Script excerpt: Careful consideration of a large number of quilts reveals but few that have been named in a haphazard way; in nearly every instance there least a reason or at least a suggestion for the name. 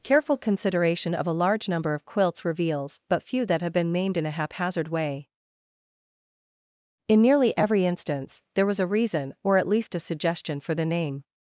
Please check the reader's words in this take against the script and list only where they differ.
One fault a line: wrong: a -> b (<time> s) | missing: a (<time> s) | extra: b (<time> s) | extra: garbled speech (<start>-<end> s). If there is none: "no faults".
wrong: least -> was (8.6 s)